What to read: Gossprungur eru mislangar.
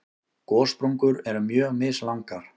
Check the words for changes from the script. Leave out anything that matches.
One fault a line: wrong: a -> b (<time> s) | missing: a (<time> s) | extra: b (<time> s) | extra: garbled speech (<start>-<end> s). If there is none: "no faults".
extra: mjög (1.5 s)